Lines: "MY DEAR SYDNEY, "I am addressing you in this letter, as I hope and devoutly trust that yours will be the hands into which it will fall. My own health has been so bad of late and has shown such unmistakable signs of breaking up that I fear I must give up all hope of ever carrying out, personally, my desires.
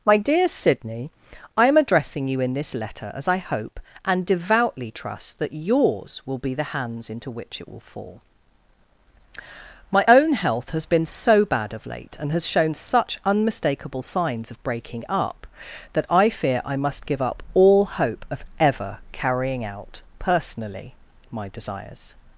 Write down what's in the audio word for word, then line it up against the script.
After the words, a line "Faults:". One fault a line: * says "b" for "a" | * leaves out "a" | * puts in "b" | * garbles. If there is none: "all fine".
"MY DEAR SYDNEY, "I am addressing you in this letter, as I hope and devoutly trust that yours will be the hands into which it will fall. My own health has been so bad of late and has shown such unmistakable signs of breaking up that I fear I must give up all hope of ever carrying out, personally, my desires.
Faults:
all fine